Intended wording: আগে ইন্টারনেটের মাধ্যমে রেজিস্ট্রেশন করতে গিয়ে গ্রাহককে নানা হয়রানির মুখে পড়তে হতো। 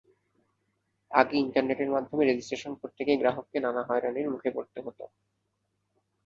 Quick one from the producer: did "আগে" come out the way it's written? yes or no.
yes